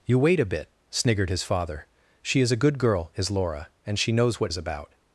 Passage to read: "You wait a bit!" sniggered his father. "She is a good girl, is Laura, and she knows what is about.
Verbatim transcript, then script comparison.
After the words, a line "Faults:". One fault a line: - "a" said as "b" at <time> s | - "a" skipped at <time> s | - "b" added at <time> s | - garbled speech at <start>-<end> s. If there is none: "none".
"You wait a bit!" sniggered his father. "She is a good girl, is Laura, and she knows what is about.
Faults:
none